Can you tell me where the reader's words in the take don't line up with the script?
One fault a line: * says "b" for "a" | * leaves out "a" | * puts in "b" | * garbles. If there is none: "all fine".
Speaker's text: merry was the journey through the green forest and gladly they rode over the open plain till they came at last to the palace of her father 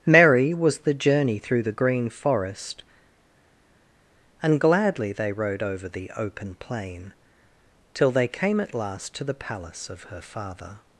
all fine